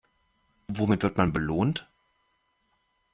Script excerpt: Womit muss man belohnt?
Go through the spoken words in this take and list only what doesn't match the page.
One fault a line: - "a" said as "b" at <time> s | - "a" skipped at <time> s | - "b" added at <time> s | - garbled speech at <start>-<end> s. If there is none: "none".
- "muss" said as "wird" at 1.0 s